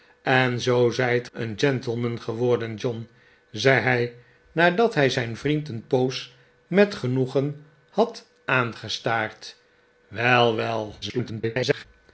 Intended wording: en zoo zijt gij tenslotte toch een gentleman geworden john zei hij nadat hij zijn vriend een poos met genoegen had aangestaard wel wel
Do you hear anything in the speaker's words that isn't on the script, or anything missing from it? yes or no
yes